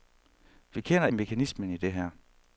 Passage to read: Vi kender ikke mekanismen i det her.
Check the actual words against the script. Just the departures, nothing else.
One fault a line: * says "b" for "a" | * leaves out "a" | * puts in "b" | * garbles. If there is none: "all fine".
* leaves out "ikke"